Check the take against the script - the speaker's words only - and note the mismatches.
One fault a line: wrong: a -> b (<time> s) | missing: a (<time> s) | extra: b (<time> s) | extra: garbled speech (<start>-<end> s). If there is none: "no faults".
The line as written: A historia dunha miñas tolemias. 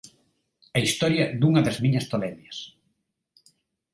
extra: das (1.6 s)